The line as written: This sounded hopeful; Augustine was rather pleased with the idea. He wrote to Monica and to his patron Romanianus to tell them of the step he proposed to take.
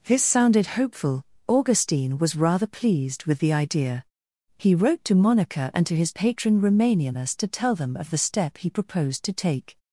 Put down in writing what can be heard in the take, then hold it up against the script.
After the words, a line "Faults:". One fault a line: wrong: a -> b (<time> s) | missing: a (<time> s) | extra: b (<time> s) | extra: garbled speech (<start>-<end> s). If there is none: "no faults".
This sounded hopeful; Augustine was rather pleased with the idea. He wrote to Monica and to his patron Romanianus to tell them of the step he proposed to take.
Faults:
no faults